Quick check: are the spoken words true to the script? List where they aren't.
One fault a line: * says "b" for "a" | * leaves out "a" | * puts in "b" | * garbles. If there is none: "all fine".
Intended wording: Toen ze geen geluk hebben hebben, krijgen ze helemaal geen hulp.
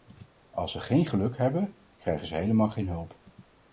* says "Als" for "Toen"
* leaves out "hebben"